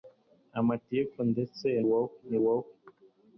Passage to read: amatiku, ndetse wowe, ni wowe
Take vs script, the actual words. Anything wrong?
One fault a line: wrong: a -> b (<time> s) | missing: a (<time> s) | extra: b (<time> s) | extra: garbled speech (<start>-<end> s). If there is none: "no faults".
no faults